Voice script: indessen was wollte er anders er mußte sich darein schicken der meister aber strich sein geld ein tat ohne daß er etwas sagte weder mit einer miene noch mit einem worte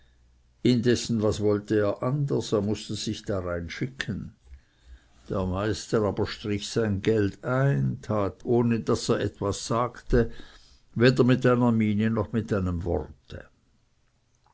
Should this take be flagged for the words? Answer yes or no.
no